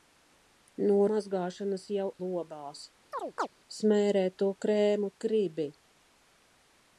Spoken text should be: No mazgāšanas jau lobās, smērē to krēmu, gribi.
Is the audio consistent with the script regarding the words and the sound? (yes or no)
no